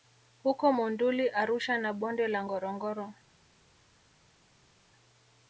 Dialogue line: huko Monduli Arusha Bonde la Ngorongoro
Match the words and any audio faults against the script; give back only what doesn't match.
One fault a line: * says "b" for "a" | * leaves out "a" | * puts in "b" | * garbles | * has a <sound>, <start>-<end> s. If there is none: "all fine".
* puts in "na"